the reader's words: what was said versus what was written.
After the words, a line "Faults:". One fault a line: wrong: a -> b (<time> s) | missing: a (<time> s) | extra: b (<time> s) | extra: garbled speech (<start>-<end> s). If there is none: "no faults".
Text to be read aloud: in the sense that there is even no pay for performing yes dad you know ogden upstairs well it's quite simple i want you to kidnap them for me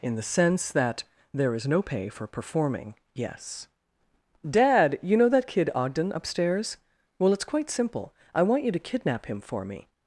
in the sense that there is no pay for performing yes dad you know that kid ogden upstairs well it's quite simple i want you to kidnap him for me
Faults:
missing: even (1.7 s)
extra: that kid (5.3 s)
wrong: them -> him (9.3 s)